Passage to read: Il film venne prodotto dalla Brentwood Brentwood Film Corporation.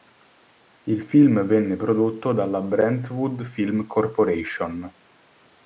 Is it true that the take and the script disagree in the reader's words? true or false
true